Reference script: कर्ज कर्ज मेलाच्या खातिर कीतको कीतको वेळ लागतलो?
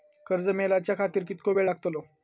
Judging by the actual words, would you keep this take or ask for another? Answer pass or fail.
fail